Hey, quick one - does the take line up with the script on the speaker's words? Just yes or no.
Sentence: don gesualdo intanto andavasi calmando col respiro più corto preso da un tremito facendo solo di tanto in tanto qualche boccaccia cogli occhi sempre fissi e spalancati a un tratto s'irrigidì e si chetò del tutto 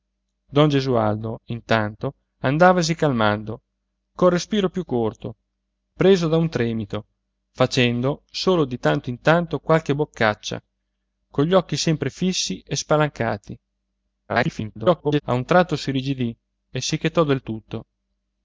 no